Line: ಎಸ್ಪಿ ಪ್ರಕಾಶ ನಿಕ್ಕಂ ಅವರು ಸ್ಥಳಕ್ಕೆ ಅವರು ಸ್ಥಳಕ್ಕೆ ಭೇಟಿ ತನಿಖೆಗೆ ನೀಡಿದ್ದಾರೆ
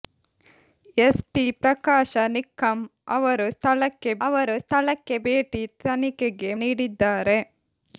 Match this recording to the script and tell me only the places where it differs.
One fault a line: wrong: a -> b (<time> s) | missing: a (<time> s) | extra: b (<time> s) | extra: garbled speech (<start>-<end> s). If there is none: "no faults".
no faults